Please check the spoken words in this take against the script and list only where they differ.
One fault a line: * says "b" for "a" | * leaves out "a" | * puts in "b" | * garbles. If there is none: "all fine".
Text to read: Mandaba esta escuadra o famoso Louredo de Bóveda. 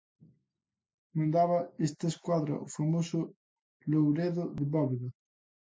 all fine